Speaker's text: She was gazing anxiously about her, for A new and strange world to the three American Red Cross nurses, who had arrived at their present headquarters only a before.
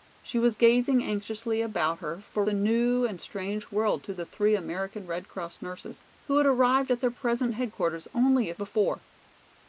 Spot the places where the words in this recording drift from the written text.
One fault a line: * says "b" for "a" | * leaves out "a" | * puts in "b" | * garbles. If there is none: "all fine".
all fine